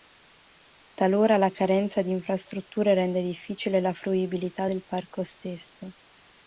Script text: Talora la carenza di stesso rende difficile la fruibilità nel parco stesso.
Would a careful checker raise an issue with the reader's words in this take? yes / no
yes